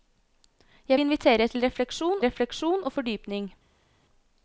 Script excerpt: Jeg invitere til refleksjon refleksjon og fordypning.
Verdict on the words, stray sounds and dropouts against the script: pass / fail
pass